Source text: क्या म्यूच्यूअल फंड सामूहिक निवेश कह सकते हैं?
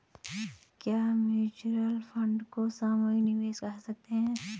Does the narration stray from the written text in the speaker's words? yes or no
yes